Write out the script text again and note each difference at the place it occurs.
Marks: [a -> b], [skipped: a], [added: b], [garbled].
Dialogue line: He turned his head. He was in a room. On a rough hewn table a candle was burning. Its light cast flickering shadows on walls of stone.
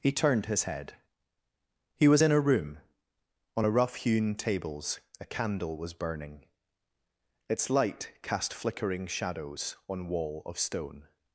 He turned his head. He was in a room. On a rough hewn [table -> tables] a candle was burning. Its light cast flickering shadows on [walls -> wall] of stone.